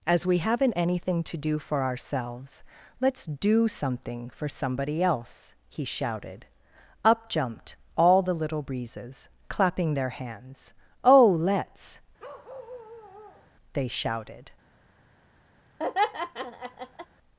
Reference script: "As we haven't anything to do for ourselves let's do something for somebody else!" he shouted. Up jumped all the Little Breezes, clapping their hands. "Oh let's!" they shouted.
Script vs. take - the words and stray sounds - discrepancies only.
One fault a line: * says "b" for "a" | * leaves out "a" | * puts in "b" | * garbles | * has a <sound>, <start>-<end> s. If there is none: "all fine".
* has a bark, 12.2-13.5 s
* has a laugh, 15.8-17.1 s